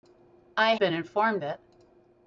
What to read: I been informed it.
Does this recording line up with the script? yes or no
yes